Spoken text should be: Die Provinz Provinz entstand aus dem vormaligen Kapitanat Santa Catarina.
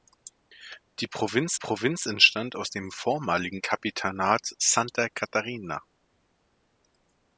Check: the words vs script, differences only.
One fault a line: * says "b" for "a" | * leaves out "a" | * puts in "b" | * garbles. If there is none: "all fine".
all fine